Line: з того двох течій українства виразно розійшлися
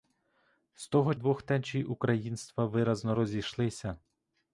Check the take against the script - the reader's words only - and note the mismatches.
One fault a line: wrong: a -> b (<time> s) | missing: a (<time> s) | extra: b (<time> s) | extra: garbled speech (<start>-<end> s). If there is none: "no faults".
no faults